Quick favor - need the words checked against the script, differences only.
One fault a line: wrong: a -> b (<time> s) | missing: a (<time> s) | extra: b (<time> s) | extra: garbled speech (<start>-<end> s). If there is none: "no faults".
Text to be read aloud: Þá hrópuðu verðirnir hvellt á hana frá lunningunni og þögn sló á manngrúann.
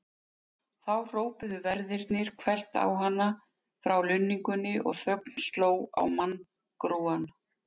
no faults